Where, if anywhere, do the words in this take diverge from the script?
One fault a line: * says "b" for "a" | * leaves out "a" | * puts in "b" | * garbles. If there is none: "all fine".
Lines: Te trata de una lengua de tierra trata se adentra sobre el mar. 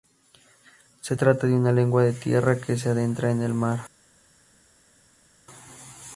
* says "Se" for "Te"
* says "que" for "trata"
* says "en" for "sobre"